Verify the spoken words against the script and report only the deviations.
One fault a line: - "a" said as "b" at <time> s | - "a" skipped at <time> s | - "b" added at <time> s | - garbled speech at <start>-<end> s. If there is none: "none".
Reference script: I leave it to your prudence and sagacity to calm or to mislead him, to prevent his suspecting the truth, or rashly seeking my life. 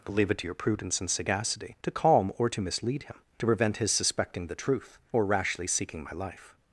- "I" said as "but" at 0.1 s